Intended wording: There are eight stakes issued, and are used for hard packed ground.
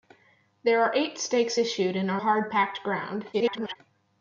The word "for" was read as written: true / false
false